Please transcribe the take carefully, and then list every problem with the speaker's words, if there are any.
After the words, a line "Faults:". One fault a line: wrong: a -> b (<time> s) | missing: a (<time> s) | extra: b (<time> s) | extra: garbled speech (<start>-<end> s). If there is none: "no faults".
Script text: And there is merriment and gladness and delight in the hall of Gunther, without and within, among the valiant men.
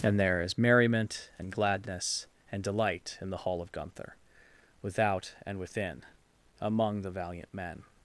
And there is merriment and gladness and delight in the hall of Gunther, without and within, among the valiant men.
Faults:
no faults